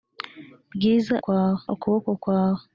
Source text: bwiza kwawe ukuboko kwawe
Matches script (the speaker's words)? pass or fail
pass